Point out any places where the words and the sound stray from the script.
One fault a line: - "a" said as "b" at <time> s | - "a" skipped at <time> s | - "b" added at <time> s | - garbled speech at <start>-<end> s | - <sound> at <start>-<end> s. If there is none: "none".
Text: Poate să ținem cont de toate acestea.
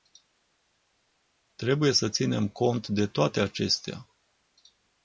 - "Poate" said as "Trebuie" at 1.6 s